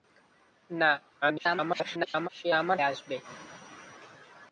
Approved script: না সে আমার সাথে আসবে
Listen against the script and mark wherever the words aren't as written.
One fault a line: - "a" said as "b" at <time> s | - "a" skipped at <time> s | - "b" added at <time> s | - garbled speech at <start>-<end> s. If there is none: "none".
- garbled speech at 1.2-2.3 s
- "সাথে" skipped at 2.8 s